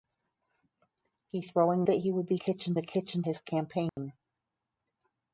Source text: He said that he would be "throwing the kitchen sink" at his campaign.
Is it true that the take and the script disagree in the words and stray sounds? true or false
true